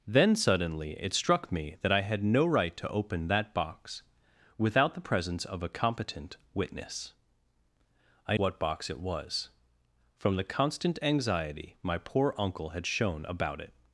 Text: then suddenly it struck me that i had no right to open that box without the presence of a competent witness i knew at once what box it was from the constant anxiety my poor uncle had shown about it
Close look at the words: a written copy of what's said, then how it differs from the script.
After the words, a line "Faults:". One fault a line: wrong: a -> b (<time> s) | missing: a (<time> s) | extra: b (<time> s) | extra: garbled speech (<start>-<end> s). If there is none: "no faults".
then suddenly it struck me that i had no right to open that box without the presence of a competent witness i what box it was from the constant anxiety my poor uncle had shown about it
Faults:
missing: knew at once (8.4 s)